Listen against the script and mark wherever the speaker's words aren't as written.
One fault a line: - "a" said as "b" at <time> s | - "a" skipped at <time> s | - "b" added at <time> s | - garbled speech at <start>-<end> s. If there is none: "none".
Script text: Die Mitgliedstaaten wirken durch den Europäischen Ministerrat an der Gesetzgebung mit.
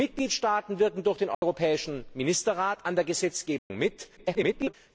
- garbled speech at 4.2-4.7 s